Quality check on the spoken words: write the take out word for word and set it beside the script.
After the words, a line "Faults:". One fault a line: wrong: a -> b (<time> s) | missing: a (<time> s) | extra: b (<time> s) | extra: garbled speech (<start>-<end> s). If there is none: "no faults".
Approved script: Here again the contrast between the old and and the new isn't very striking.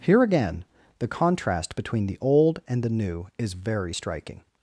Here again the contrast between the old and the new is very striking.
Faults:
missing: and (2.8 s)
wrong: isn't -> is (3.4 s)